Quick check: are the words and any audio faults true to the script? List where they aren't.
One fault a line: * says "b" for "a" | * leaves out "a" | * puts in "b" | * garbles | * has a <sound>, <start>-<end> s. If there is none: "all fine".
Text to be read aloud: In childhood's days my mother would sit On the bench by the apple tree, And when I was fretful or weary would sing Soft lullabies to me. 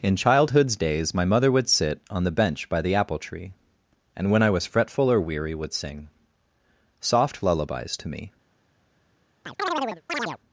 * has a chirp, 9.4-10.4 s